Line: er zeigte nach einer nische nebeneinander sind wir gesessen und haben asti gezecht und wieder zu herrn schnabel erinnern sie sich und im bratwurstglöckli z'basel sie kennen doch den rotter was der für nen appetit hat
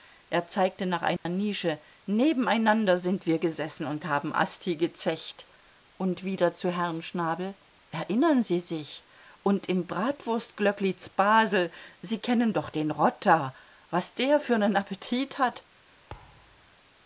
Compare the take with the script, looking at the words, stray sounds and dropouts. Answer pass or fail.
fail